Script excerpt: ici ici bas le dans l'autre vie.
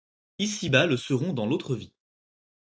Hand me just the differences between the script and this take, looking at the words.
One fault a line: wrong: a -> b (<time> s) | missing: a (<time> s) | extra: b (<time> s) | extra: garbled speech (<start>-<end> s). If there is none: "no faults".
missing: ici (0.7 s)
extra: seront (0.9 s)